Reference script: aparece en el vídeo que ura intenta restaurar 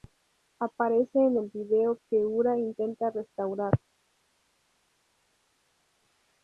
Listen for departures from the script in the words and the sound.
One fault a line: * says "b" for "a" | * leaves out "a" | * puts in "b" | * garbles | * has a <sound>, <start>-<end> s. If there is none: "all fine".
all fine